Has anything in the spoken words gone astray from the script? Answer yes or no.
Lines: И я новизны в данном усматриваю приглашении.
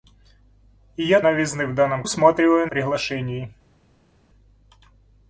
no